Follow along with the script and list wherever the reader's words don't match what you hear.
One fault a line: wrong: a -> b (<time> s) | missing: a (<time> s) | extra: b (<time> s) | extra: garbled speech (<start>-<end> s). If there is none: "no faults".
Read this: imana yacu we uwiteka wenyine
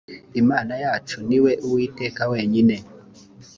extra: ni (1.3 s)